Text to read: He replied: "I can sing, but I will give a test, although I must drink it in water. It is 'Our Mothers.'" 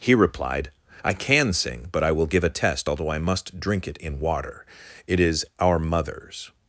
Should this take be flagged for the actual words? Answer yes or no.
no